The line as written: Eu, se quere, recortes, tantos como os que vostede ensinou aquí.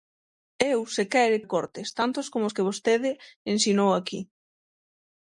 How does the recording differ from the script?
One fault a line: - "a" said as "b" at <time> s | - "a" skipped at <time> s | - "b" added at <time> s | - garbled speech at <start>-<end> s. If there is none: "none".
none